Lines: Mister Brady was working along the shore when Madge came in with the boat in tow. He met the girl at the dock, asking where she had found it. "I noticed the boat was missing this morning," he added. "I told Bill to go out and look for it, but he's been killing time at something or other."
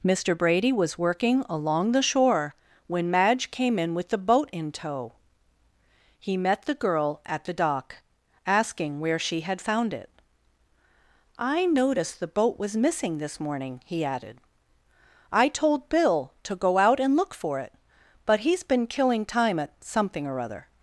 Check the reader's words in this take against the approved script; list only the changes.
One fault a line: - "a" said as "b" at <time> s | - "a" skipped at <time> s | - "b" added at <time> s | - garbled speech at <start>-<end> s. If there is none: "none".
none